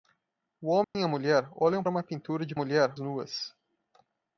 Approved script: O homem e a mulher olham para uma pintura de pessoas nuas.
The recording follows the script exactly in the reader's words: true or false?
false